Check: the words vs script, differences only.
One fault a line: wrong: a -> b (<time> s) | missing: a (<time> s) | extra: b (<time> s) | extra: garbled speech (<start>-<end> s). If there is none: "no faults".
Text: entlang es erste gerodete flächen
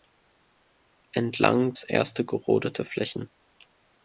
no faults